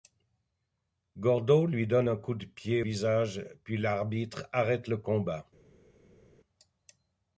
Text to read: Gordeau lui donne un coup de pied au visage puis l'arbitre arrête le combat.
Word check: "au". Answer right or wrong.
wrong